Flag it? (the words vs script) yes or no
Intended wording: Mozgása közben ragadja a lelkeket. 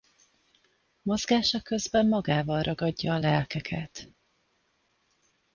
yes